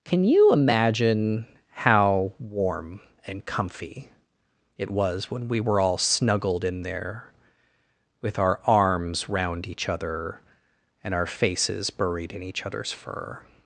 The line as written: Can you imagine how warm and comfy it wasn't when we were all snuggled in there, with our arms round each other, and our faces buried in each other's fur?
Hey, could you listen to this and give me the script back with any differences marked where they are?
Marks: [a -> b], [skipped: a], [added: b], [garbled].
Can you imagine how warm and comfy it [wasn't -> was] when we were all snuggled in there, with our arms round each other, and our faces buried in each other's fur?